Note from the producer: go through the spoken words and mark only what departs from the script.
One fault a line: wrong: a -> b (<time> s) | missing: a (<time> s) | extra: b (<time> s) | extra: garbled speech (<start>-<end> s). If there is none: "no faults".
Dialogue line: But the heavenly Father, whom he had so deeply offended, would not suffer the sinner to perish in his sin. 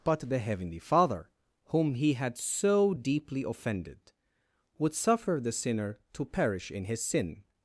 missing: not (4.9 s)